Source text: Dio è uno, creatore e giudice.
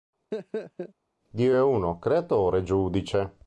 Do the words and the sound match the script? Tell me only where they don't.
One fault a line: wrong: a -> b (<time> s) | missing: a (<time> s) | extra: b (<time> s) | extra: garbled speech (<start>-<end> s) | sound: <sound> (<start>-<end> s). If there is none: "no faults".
sound: laugh (0.3-0.9 s)